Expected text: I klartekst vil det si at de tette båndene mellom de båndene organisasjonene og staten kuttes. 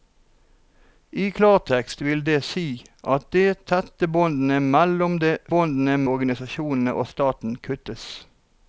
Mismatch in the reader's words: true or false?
false